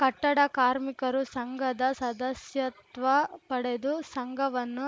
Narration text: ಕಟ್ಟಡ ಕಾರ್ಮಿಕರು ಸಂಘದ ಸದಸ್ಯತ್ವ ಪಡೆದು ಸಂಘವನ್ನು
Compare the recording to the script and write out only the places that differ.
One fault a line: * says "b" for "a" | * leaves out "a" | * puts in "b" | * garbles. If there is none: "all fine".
all fine